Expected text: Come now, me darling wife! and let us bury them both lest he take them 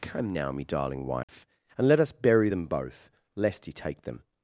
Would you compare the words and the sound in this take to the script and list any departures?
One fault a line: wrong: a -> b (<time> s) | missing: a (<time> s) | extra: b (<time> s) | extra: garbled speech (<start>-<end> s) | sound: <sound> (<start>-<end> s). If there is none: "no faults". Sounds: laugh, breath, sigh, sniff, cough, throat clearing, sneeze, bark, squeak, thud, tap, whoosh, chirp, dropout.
sound: dropout (1.2-1.3 s)